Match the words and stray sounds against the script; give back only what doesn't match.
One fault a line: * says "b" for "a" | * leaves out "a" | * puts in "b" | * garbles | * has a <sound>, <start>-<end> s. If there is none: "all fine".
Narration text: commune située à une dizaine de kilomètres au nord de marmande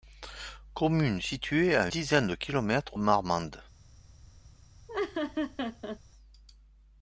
* leaves out "une"
* leaves out "au nord de"
* has a laugh, 4.9-6.0 s